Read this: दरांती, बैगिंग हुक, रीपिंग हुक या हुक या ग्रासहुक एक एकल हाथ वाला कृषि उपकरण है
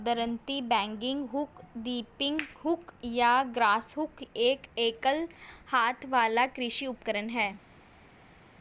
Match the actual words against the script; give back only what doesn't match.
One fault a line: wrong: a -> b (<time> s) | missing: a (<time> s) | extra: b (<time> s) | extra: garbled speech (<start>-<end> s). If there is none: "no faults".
missing: हुक या (3.3 s)